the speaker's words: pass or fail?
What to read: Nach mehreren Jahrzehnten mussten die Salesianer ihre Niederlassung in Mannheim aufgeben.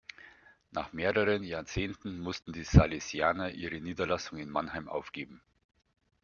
pass